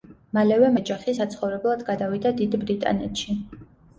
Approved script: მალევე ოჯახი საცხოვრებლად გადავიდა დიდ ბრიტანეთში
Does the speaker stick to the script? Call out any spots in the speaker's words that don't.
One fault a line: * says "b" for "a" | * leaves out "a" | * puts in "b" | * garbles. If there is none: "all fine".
all fine